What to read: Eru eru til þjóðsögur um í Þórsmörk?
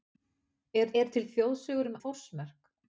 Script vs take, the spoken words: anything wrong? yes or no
no